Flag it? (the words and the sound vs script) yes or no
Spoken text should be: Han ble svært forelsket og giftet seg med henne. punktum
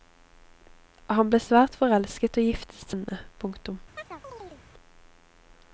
yes